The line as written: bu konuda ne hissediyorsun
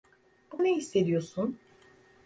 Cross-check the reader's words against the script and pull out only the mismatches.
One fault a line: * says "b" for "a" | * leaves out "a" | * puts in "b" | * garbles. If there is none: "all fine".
* leaves out "konuda"